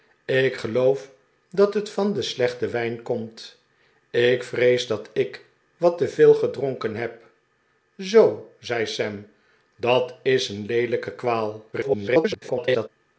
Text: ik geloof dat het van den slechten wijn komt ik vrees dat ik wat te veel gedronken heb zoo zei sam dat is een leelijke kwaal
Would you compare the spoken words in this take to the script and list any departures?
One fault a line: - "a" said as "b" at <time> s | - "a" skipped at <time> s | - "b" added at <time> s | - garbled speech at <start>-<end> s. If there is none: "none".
- garbled speech at 11.7-12.9 s